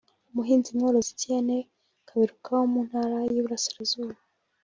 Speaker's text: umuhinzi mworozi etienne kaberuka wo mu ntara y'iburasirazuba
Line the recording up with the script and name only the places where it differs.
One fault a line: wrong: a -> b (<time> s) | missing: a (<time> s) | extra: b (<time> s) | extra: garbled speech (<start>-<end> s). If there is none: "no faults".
no faults